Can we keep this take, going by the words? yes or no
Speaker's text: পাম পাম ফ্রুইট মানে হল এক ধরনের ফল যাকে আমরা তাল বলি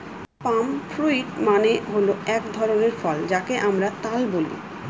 no